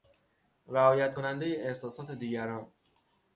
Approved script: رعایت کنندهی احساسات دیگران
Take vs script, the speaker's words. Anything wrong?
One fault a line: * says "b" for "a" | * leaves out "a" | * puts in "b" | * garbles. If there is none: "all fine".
all fine